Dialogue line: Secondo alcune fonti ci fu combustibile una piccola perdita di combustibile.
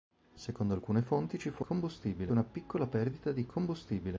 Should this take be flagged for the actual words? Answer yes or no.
no